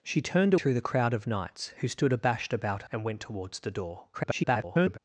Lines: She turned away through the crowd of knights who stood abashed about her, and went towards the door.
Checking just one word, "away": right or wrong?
wrong